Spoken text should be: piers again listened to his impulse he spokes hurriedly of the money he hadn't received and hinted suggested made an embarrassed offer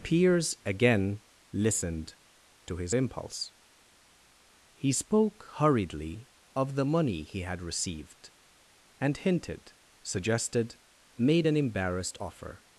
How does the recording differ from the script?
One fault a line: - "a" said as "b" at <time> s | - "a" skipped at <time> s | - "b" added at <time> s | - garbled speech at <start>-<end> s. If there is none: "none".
- "spokes" said as "spoke" at 4.9 s
- "hadn't" said as "had" at 7.4 s